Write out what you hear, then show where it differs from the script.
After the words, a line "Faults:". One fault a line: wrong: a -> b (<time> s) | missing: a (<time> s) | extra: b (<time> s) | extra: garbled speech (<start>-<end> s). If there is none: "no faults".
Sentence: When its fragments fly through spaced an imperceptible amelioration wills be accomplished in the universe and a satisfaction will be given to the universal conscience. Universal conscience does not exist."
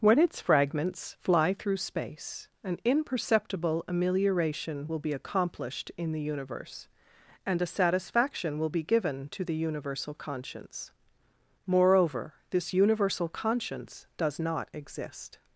When its fragments fly through space an imperceptible amelioration will be accomplished in the universe and a satisfaction will be given to the universal conscience. Moreover, this universal conscience does not exist."
Faults:
wrong: spaced -> space (1.8 s)
wrong: wills -> will (4.9 s)
extra: Moreover this (11.7 s)